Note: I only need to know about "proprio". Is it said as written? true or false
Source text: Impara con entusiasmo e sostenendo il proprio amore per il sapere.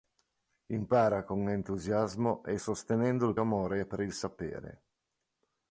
false